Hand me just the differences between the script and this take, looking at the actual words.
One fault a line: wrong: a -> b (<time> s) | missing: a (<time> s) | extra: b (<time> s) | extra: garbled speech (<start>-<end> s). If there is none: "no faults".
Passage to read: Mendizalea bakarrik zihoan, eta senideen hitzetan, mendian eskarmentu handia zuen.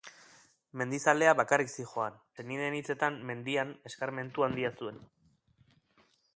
missing: eta (2.2 s)